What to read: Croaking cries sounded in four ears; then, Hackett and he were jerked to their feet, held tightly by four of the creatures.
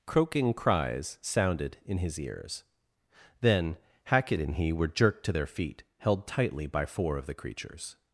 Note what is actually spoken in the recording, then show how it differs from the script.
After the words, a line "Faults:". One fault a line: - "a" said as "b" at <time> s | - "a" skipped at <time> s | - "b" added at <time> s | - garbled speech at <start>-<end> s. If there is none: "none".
Croaking cries sounded in his ears; then, Hackett and he were jerked to their feet, held tightly by four of the creatures.
Faults:
- "four" said as "his" at 2.0 s